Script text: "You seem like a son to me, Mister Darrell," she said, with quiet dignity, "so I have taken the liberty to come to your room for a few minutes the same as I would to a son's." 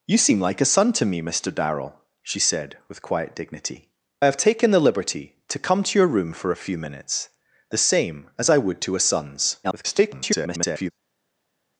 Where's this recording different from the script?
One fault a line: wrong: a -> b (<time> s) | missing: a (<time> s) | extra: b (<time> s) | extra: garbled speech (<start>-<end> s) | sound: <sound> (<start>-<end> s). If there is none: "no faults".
missing: so (3.9 s)
extra: garbled speech (9.6-10.9 s)